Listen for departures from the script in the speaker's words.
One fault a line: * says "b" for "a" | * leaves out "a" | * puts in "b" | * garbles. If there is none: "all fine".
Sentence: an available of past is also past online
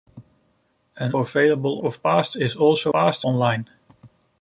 all fine